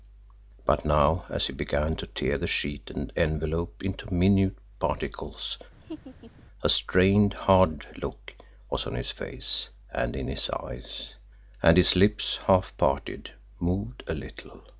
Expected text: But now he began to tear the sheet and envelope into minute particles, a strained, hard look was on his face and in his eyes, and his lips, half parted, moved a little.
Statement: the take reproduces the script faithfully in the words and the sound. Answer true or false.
false